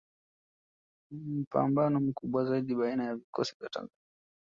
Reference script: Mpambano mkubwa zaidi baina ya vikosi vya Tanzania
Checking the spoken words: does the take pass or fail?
pass